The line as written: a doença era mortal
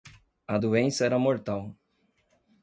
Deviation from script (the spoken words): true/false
false